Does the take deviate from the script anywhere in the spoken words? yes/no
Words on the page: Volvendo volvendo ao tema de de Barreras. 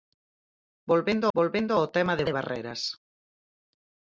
no